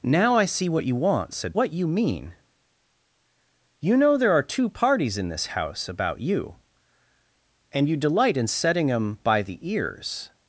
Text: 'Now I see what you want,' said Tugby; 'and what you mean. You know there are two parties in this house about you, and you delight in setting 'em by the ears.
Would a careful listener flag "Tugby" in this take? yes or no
yes